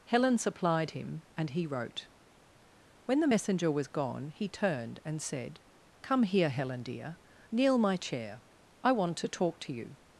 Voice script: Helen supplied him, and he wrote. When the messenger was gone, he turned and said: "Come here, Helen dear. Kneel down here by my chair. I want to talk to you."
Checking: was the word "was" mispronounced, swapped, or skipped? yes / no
no